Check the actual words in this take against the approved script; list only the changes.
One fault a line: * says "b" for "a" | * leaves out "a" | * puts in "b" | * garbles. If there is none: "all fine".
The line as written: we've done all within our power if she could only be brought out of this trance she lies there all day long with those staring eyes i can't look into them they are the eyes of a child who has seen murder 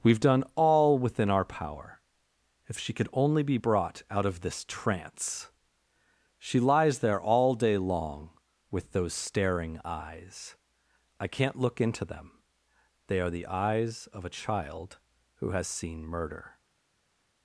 all fine